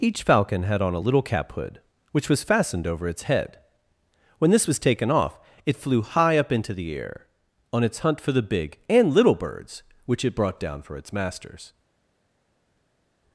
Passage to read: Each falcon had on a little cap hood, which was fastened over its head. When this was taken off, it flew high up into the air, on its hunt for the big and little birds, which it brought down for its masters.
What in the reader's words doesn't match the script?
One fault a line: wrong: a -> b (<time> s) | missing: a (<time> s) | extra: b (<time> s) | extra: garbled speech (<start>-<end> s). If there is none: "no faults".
no faults